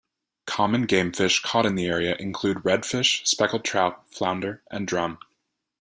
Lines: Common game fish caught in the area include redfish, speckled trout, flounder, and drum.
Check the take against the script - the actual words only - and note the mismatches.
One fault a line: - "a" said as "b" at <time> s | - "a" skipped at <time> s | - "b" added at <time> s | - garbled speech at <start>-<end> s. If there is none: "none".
none